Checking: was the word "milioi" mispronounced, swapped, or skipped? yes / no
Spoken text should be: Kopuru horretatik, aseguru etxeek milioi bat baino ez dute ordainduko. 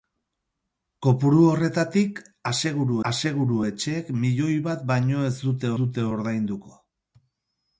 no